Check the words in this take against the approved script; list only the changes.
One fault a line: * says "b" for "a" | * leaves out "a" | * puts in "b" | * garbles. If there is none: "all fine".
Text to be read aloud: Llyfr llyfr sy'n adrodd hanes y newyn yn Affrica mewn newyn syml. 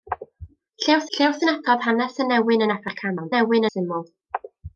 all fine